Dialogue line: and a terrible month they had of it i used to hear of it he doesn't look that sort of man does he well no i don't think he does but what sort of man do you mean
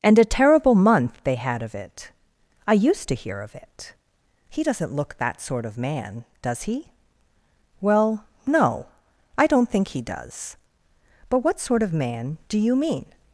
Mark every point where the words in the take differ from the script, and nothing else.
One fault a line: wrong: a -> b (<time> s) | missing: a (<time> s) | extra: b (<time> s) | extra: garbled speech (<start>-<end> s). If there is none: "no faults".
no faults